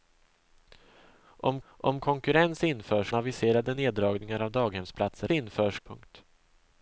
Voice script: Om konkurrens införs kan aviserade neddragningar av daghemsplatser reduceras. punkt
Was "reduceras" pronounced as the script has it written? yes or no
no